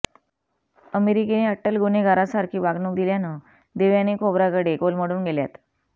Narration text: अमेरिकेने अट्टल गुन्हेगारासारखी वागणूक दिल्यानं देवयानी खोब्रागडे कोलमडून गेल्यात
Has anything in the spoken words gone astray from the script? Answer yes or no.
no